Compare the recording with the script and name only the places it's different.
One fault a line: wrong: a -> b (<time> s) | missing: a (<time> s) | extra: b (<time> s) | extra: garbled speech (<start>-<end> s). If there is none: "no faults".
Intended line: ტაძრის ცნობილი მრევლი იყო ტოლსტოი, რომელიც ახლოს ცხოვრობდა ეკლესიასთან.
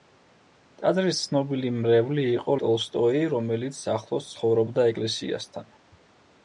no faults